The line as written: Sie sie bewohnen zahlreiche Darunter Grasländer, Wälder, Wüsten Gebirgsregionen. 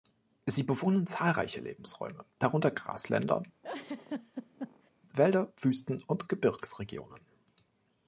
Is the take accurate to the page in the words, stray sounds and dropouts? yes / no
no